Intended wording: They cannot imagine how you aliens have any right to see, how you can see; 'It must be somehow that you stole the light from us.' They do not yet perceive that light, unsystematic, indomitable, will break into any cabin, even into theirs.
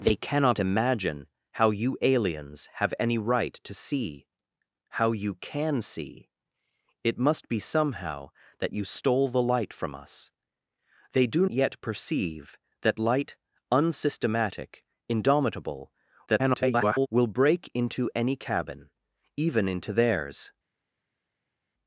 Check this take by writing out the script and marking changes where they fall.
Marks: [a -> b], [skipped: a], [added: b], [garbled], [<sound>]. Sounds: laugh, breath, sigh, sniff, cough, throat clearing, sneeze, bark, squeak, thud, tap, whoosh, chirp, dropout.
They cannot imagine how you aliens have any right to see, how you can see; 'It must be somehow that you stole the light from us.' They do [skipped: not] yet perceive that light, unsystematic, indomitable, [garbled] will break into any cabin, even into theirs.